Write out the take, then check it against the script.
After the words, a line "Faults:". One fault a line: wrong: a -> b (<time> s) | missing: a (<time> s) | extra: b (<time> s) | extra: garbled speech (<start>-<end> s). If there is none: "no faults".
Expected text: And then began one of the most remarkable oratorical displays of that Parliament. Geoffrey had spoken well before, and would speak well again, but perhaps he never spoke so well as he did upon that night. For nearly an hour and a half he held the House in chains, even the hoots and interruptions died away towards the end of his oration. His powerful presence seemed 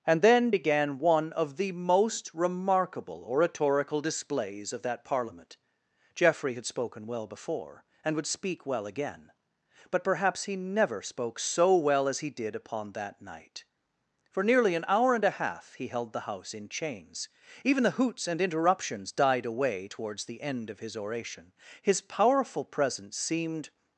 And then began one of the most remarkable oratorical displays of that Parliament. Geoffrey had spoken well before, and would speak well again, but perhaps he never spoke so well as he did upon that night. For nearly an hour and a half he held the House in chains, even the hoots and interruptions died away towards the end of his oration. His powerful presence seemed
Faults:
no faults